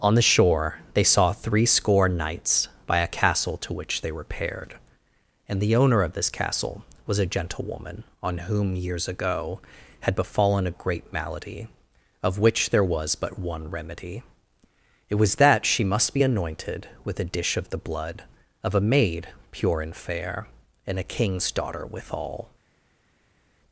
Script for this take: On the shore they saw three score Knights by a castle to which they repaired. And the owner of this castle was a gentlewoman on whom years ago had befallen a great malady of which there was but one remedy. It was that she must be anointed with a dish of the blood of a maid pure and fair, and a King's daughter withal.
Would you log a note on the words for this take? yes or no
no